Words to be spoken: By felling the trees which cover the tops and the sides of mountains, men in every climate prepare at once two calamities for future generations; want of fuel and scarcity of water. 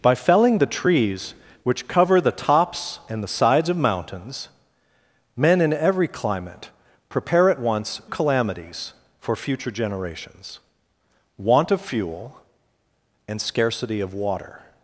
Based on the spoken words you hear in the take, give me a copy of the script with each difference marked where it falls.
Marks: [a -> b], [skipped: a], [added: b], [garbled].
By felling the trees which cover the tops and the sides of mountains, men in every climate prepare at once [skipped: two] calamities for future generations; want of fuel and scarcity of water.